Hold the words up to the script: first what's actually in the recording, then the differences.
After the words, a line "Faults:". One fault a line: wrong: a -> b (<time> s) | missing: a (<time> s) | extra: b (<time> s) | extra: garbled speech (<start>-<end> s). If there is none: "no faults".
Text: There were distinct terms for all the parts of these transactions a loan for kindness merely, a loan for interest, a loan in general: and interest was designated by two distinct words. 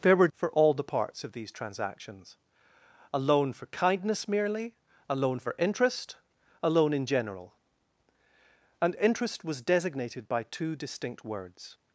There were for all the parts of these transactions a loan for kindness merely, a loan for interest, a loan in general: and interest was designated by two distinct words.
Faults:
missing: distinct terms (0.3 s)